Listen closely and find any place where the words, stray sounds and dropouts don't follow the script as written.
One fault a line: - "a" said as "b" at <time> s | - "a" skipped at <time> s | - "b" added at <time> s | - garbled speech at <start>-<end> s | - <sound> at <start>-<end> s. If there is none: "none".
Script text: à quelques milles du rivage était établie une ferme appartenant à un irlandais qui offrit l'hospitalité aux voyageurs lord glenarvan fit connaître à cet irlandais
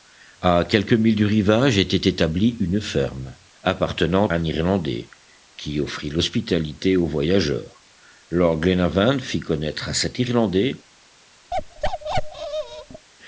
- "à" skipped at 4.3 s
- bark at 11.5-13.1 s